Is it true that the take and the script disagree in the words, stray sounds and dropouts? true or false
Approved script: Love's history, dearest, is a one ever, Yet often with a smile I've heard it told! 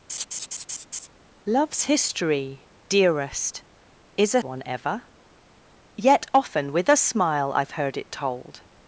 true